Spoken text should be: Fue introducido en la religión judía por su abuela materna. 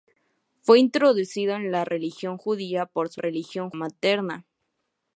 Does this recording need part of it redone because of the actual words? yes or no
yes